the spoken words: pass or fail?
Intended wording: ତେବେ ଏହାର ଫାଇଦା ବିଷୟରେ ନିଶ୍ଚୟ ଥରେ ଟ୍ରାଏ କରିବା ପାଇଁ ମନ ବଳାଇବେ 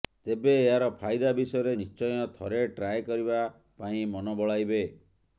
pass